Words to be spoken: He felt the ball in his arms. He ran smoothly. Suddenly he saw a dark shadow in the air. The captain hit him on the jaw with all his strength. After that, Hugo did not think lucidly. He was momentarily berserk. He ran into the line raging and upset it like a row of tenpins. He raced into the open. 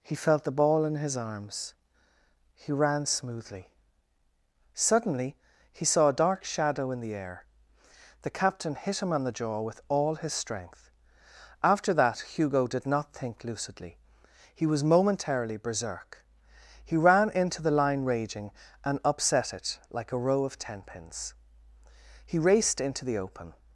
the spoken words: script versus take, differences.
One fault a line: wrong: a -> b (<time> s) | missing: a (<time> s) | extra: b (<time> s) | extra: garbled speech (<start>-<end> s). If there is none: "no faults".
no faults